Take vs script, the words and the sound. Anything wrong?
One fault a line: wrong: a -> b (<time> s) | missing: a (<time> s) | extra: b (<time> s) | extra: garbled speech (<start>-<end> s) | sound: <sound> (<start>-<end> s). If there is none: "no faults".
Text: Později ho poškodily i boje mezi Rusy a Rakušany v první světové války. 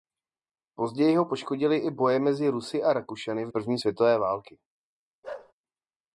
sound: bark (5.2-5.5 s)